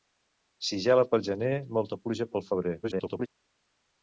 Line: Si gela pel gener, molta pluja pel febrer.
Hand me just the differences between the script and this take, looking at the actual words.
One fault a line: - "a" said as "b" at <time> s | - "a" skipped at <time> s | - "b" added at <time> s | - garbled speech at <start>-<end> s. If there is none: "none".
- garbled speech at 2.8-3.3 s